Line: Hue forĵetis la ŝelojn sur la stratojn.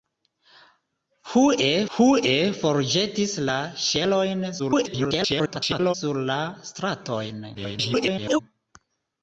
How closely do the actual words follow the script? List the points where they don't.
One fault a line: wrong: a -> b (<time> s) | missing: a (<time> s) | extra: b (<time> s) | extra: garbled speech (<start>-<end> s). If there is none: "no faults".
extra: hue (2.0 s)
extra: garbled speech (4.6-5.9 s)
extra: garbled speech (7.5-8.4 s)